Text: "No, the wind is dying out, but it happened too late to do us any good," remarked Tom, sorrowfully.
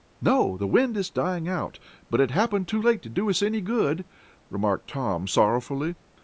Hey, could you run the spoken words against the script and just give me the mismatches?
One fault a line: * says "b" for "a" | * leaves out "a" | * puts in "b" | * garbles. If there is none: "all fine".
all fine